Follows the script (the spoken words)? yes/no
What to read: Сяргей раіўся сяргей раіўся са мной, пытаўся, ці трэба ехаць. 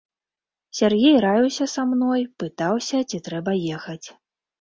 no